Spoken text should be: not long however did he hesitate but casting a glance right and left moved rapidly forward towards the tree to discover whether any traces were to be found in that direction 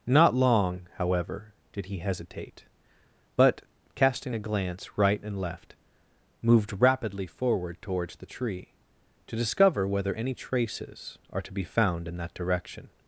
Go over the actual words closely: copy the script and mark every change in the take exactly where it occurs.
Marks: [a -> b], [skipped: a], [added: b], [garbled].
not long however did he hesitate but casting a glance right and left moved rapidly forward towards the tree to discover whether any traces [were -> are] to be found in that direction